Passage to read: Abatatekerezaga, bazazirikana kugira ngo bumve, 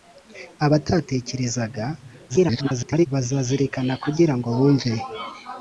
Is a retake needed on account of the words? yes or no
yes